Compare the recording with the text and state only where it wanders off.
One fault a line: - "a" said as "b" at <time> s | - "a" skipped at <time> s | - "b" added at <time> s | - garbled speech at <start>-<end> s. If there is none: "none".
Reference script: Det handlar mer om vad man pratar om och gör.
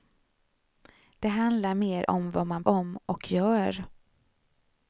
- "pratar" skipped at 2.6 s